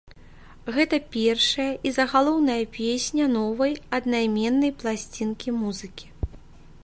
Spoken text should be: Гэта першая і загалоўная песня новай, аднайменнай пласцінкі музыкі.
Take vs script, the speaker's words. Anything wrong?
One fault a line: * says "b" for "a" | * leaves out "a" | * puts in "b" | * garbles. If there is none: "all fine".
all fine